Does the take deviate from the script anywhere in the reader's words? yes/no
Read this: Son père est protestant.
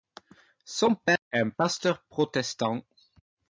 yes